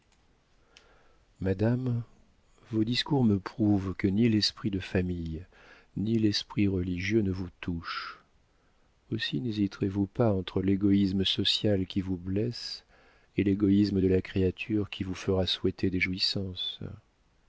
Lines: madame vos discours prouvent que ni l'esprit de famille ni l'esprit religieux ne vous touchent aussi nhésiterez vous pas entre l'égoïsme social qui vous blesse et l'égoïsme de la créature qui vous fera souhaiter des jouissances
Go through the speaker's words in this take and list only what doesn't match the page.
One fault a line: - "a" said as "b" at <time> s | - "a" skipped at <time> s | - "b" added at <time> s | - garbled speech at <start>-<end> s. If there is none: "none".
- "me" added at 3.2 s